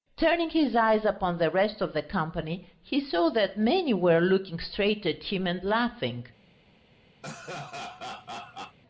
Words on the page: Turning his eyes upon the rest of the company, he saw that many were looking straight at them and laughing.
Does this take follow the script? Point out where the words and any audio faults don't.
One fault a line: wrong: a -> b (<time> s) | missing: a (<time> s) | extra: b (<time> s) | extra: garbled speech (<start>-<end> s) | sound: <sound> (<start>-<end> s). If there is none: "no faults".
wrong: them -> him (5.2 s)
sound: laugh (7.2-8.8 s)